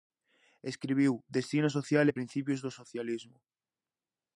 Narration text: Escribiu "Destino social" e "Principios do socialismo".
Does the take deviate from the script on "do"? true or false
false